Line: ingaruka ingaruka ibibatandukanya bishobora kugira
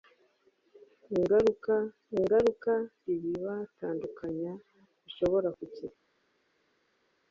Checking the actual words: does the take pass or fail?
pass